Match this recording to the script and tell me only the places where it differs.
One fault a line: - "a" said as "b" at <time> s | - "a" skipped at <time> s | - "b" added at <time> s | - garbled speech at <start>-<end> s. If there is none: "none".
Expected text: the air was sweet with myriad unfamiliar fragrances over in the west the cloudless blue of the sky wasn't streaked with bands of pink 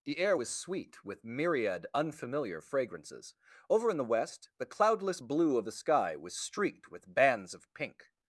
- "wasn't" said as "was" at 6.2 s